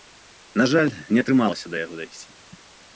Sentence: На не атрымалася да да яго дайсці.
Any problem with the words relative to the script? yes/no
yes